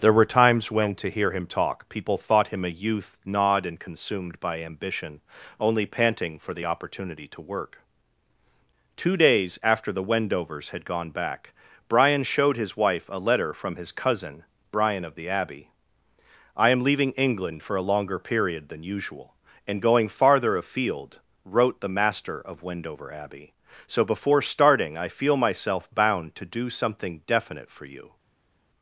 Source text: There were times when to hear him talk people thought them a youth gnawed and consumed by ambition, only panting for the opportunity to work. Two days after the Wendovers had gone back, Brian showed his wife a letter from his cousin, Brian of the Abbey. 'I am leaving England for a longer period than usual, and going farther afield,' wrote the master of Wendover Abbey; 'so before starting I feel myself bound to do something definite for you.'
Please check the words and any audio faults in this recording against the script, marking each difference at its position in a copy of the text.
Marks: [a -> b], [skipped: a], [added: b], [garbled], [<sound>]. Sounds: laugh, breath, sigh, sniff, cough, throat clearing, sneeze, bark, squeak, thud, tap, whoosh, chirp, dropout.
There were times when to hear him talk people thought [them -> him] a youth gnawed and consumed by ambition, only panting for the opportunity to work. Two days after the Wendovers had gone back, Brian showed his wife a letter from his cousin, Brian of the Abbey. 'I am leaving England for a longer period than usual, and going farther afield,' wrote the master of Wendover Abbey; 'so before starting I feel myself bound to do something definite for you.'